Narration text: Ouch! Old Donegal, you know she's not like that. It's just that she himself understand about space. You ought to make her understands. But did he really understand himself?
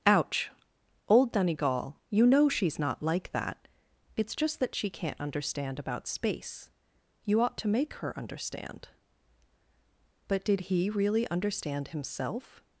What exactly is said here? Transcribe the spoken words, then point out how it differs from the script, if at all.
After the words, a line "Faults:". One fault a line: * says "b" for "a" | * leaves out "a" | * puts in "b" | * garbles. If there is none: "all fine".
Ouch! Old Donegal, you know she's not like that. It's just that she can't understand about space. You ought to make her understand. But did he really understand himself?
Faults:
* says "can't" for "himself"
* says "understand" for "understands"